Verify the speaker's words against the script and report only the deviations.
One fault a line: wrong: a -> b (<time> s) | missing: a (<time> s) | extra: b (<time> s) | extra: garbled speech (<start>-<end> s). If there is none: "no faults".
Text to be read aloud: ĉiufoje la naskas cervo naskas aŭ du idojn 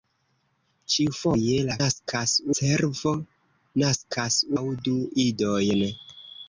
no faults